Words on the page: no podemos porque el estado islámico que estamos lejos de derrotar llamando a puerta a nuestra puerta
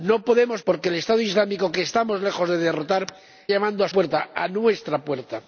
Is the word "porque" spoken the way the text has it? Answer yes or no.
yes